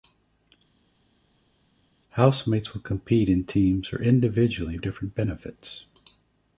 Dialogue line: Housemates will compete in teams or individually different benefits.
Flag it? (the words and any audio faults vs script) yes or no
no